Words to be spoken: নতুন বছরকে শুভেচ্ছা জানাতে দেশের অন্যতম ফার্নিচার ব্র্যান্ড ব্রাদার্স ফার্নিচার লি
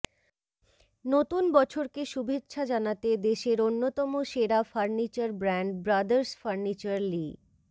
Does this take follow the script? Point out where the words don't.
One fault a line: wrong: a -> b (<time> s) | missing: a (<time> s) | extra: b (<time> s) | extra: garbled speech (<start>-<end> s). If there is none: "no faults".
extra: সেরা (4.3 s)